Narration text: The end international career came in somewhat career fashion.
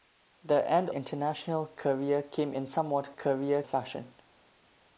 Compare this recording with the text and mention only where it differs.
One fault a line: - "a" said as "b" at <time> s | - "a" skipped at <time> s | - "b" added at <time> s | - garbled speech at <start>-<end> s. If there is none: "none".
none